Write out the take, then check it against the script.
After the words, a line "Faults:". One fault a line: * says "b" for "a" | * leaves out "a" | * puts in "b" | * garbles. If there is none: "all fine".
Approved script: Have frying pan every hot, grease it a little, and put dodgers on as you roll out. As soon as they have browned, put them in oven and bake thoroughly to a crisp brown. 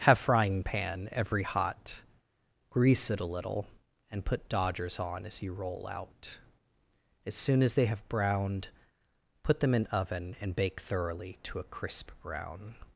Have frying pan every hot, grease it a little, and put dodgers on as you roll out. As soon as they have browned, put them in oven and bake thoroughly to a crisp brown.
Faults:
all fine